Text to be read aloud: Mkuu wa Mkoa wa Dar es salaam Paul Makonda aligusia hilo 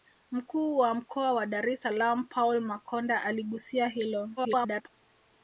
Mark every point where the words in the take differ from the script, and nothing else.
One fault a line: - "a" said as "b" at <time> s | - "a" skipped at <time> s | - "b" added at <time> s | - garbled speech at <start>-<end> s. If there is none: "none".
- garbled speech at 4.4-4.9 s